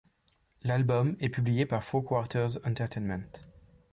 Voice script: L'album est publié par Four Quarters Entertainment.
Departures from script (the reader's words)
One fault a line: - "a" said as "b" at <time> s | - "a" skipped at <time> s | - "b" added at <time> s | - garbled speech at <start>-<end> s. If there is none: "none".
none